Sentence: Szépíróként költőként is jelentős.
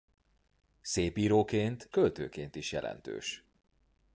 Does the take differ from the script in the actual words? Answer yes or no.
no